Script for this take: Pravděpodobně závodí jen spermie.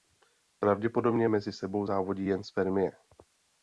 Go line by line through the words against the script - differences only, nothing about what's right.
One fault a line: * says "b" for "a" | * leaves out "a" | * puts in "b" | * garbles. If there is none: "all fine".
* puts in "mezi sebou"